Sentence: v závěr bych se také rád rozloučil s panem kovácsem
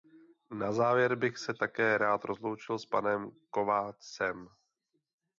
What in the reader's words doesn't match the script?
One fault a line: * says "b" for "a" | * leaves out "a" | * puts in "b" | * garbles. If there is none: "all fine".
* says "na" for "v"